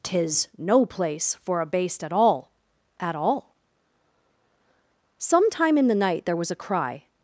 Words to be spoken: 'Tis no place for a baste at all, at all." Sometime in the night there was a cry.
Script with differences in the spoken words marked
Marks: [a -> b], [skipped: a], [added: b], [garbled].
'Tis no place for a baste at all, at all." Sometime in the night there was a cry.